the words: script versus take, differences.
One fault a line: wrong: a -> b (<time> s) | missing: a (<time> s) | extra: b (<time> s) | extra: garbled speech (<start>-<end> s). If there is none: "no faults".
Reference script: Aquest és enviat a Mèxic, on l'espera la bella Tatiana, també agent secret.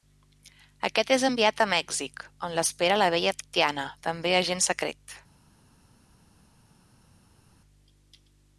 no faults